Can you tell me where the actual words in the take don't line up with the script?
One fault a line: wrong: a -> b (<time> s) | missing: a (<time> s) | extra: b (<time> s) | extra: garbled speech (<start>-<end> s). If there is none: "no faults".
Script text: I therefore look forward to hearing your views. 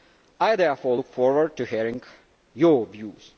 no faults